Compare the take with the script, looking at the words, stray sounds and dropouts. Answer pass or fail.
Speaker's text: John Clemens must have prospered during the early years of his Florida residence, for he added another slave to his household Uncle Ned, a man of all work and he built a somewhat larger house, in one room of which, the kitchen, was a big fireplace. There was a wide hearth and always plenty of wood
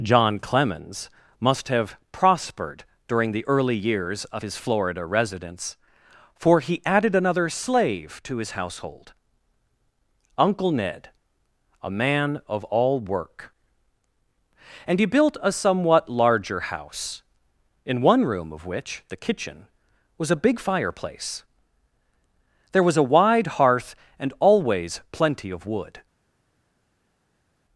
pass